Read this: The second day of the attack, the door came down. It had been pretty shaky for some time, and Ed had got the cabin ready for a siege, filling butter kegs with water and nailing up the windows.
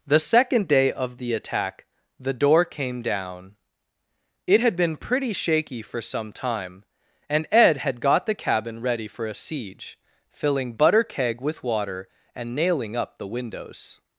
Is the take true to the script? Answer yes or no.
no